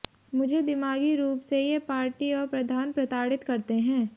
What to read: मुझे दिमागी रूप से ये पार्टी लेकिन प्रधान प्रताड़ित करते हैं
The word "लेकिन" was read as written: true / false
false